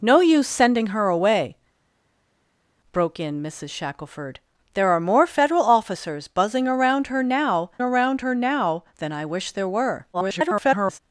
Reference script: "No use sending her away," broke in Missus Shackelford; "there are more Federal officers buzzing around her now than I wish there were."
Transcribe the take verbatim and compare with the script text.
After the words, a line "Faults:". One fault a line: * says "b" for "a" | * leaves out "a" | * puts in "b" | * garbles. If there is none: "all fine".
"No use sending her away," broke in Missus Shackelford; "there are more Federal officers buzzing around her now around her now than I wish there were." [garbled]
Faults:
* puts in "around her now"
* garbles